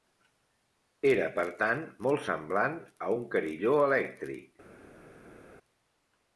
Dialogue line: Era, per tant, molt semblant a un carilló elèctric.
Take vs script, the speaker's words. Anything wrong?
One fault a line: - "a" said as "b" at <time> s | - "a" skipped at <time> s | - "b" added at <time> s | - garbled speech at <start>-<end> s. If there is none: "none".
none